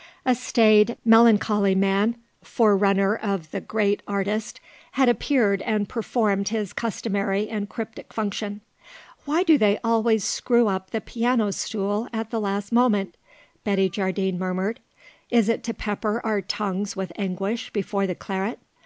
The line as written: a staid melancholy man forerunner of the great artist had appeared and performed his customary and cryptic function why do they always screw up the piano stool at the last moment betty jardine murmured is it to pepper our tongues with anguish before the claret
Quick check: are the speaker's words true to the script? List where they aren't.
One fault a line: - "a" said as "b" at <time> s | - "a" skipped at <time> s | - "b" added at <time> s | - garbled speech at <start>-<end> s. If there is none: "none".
none